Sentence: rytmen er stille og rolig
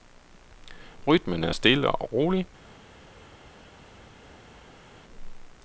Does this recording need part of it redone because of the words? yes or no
no